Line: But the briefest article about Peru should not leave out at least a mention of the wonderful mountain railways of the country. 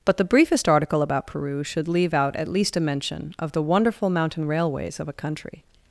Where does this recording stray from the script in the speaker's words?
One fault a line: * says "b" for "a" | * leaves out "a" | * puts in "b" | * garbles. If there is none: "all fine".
* leaves out "not"
* says "a" for "the"